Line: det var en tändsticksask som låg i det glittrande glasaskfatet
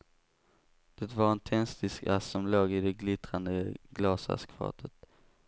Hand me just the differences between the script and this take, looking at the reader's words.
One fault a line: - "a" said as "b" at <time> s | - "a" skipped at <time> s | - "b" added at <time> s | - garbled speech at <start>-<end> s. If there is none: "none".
none